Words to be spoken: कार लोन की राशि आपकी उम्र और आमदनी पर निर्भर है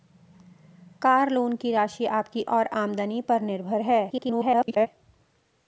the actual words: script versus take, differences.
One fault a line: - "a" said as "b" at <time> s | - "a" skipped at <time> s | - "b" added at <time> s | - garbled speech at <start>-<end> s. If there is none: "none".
- "उम्र" skipped at 2.4 s
- garbled speech at 4.1-4.9 s